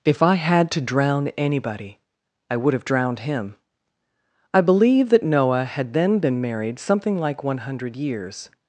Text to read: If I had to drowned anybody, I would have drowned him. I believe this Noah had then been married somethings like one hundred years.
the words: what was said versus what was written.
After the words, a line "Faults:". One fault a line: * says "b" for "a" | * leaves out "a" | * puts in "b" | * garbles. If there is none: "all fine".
If I had to drown anybody, I would have drowned him. I believe that Noah had then been married something like one hundred years.
Faults:
* says "drown" for "drowned"
* says "that" for "this"
* says "something" for "somethings"